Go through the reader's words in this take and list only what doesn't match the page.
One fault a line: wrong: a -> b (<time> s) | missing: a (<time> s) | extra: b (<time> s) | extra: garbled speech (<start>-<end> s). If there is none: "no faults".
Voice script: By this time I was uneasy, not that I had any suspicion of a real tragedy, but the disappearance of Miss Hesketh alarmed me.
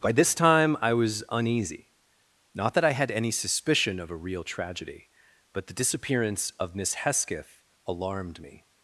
no faults